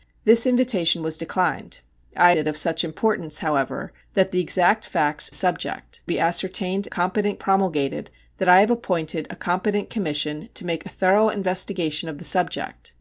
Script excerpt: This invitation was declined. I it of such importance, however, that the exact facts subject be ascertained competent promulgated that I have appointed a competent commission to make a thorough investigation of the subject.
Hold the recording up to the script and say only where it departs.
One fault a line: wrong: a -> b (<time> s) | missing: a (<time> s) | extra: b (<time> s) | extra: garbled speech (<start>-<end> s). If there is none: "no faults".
no faults